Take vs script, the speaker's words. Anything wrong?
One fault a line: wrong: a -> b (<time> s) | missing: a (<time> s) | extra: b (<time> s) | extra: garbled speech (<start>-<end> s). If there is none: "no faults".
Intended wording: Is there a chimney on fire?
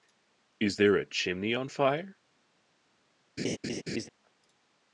no faults